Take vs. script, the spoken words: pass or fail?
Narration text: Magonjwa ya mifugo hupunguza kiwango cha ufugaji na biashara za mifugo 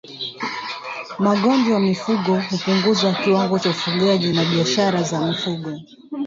pass